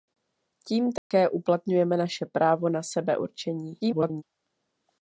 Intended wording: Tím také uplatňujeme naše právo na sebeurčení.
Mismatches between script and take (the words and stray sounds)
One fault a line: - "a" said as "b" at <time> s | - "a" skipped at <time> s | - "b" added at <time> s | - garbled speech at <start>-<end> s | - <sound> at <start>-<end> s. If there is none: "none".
- dropout at 1.0-1.1 s
- garbled speech at 3.8-4.2 s